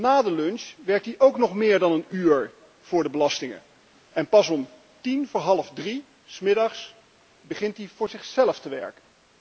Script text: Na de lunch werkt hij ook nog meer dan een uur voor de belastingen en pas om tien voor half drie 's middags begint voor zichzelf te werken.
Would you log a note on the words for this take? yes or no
yes